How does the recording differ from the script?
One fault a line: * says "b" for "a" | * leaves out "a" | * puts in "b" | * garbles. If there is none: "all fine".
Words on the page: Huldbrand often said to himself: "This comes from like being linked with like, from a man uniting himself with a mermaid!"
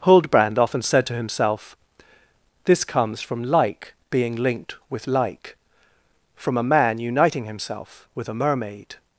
all fine